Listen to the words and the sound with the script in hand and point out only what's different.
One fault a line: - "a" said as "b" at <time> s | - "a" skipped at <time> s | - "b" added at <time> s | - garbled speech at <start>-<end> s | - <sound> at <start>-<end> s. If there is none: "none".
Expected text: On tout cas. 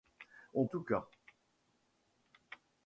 none